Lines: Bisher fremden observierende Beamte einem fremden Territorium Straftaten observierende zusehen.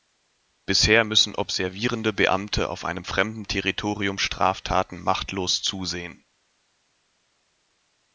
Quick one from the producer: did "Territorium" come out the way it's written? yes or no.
yes